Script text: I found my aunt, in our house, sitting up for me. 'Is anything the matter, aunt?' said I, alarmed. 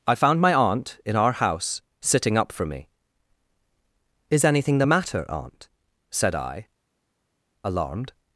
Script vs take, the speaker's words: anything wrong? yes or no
no